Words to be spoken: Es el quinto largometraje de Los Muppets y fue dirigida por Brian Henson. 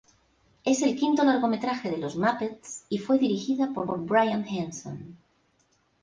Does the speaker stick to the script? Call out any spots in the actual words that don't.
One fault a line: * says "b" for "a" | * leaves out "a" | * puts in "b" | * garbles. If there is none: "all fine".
* puts in "por"